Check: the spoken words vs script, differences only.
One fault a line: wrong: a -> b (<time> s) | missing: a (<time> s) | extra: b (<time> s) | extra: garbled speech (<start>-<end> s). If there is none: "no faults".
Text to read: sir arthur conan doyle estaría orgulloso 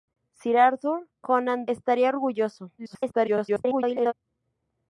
missing: doyle (1.7 s)
extra: garbled speech (2.8-4.1 s)